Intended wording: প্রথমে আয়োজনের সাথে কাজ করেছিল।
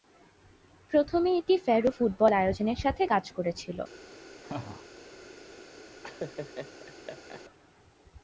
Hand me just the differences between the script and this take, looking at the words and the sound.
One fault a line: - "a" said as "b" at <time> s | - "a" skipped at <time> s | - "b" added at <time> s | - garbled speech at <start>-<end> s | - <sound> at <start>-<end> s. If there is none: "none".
- "এটি ফ্যারো ফুটবল" added at 1.4 s
- laugh at 4.4-4.8 s
- laugh at 6.0-7.4 s